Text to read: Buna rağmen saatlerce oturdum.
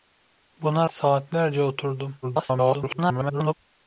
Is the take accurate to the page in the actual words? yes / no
no